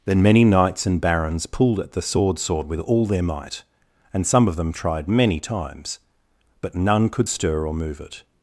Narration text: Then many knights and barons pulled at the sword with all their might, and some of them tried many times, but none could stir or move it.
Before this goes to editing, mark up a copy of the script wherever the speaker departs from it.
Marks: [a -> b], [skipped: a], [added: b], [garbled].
Then many knights and barons pulled at the sword [added: sword] with all their might, and some of them tried many times, but none could stir or move it.